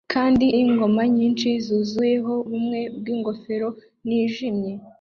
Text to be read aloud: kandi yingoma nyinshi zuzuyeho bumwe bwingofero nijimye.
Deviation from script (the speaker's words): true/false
false